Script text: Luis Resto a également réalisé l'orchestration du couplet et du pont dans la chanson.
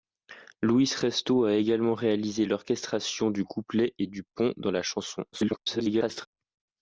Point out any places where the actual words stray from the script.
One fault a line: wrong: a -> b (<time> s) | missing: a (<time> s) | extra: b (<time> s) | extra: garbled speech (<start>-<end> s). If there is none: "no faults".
extra: garbled speech (5.3-6.3 s)